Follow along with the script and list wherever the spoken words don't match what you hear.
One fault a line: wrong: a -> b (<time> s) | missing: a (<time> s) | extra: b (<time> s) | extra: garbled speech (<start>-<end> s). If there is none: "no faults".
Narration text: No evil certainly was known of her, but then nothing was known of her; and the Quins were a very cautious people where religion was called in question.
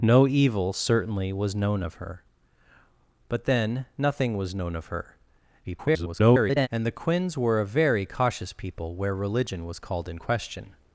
extra: garbled speech (5.6-6.7 s)